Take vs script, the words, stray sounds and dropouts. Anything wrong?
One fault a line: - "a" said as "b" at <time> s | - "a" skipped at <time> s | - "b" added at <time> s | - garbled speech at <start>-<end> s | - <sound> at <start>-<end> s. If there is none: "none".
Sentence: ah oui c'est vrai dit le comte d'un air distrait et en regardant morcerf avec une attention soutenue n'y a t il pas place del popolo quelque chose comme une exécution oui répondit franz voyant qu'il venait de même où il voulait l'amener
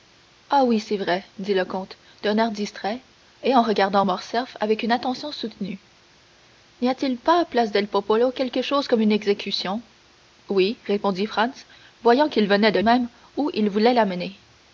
none